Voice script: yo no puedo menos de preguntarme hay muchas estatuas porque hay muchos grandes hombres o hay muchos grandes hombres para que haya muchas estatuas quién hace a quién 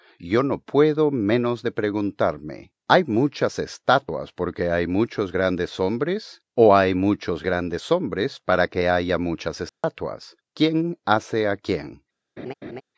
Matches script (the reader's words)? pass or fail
pass